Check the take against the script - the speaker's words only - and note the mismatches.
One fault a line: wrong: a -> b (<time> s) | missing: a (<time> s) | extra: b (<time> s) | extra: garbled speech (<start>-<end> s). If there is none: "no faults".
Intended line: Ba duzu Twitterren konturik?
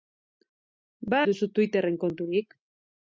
no faults